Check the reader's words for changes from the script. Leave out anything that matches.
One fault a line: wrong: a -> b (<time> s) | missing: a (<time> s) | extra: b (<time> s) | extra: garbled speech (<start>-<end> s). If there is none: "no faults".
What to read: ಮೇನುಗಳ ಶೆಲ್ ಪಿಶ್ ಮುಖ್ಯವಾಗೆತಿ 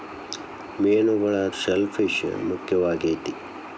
no faults